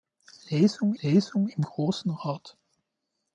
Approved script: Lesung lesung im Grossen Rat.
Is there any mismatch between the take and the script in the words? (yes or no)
no